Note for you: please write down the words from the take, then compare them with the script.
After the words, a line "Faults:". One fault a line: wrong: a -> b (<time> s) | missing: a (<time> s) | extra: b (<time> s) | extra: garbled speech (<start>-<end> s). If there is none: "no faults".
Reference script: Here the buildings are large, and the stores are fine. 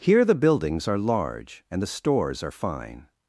Here the buildings are large, and the stores are fine.
Faults:
no faults